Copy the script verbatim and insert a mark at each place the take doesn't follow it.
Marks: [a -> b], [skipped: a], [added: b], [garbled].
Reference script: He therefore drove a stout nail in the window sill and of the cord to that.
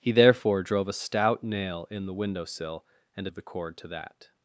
He therefore drove a stout nail in the window sill and of the cord to that.